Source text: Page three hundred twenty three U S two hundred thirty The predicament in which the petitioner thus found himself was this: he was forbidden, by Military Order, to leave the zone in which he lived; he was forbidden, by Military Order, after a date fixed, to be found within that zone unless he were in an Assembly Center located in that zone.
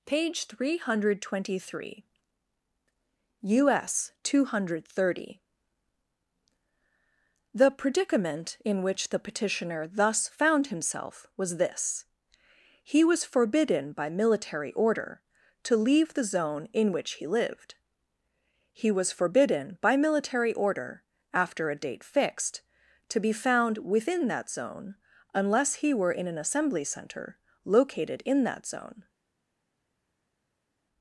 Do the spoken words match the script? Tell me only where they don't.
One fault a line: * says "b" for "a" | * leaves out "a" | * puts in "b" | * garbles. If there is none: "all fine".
all fine